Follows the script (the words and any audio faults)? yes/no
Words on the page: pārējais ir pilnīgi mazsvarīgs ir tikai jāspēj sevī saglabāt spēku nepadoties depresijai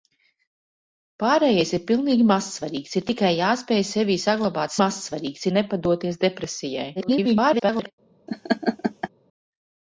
no